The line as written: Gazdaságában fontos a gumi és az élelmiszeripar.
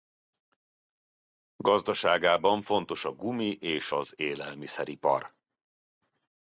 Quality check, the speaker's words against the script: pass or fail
pass